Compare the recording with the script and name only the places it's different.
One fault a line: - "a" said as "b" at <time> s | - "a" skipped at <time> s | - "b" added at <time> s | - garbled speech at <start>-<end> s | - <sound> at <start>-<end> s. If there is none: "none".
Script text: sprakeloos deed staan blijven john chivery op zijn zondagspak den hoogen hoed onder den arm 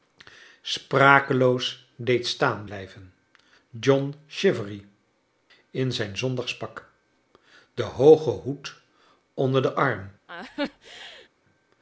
- "op" said as "in" at 5.7 s
- laugh at 10.3-11.3 s